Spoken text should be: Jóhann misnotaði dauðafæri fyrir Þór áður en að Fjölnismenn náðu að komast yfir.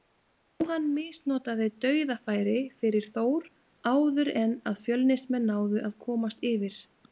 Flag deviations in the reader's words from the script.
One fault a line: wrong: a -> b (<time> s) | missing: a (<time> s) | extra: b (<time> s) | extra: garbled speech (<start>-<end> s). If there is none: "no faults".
no faults